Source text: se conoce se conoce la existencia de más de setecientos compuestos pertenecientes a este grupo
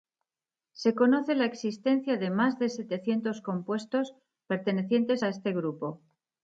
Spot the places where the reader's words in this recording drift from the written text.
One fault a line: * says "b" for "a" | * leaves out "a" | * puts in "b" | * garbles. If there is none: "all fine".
* leaves out "se conoce"